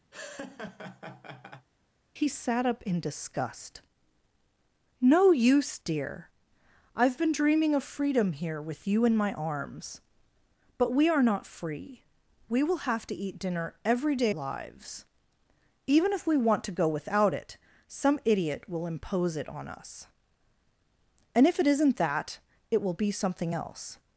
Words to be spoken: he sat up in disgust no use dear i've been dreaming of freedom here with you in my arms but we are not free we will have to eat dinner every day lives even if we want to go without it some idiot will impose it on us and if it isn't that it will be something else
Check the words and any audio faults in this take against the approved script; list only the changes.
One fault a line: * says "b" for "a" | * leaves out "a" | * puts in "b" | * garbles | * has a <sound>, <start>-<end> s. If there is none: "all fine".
* has a laugh, 0.1-1.7 s